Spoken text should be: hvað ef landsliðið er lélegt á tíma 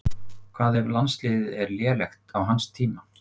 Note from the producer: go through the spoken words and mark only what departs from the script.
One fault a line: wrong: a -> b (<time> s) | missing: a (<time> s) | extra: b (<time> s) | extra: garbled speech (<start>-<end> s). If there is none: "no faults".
extra: hans (2.5 s)